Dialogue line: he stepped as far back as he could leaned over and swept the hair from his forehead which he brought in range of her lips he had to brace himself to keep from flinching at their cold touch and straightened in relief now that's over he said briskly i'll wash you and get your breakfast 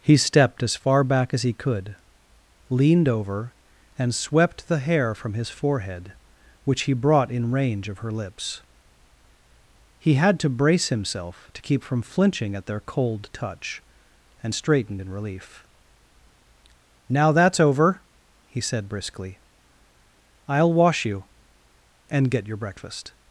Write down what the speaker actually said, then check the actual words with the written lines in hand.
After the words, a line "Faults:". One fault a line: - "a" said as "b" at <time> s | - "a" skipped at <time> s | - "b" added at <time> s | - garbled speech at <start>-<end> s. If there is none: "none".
he stepped as far back as he could leaned over and swept the hair from his forehead which he brought in range of her lips he had to brace himself to keep from flinching at their cold touch and straightened in relief now that's over he said briskly i'll wash you and get your breakfast
Faults:
none